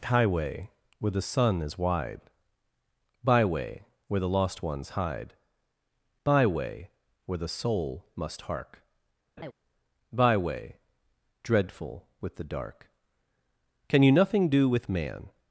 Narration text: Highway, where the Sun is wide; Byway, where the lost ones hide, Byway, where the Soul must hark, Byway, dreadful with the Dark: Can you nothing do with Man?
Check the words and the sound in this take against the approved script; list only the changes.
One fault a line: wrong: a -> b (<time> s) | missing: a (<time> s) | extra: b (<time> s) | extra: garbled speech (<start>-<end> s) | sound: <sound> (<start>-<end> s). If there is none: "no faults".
sound: laugh (9.4-9.5 s)